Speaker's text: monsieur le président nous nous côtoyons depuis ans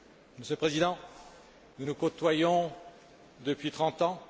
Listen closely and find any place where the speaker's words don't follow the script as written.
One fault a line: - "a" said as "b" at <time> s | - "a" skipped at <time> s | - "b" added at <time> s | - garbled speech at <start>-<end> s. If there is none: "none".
- "trente" added at 3.7 s